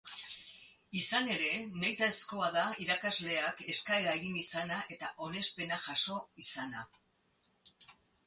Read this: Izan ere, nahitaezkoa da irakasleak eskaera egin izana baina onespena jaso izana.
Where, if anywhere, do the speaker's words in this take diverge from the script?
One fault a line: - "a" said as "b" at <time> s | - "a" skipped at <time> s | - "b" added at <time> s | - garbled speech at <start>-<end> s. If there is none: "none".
- "baina" said as "eta" at 5.0 s